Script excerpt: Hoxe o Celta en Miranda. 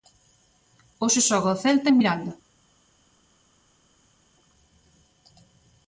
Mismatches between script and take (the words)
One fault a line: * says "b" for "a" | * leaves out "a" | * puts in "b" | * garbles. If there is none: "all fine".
* puts in "xoga"